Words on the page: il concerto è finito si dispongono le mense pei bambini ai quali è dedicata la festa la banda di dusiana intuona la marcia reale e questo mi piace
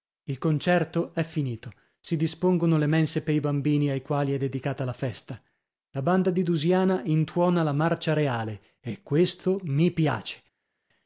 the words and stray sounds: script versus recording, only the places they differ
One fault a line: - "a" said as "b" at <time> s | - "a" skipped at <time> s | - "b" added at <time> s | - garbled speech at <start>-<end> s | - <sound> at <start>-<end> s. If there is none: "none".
none